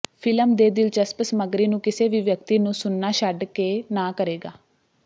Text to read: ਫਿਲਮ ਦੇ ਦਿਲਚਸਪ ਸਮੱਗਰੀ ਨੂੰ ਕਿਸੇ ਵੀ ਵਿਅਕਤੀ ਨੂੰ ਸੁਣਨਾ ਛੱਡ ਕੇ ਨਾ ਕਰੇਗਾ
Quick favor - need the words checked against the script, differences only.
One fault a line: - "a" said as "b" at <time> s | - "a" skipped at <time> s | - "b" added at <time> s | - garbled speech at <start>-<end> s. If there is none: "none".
none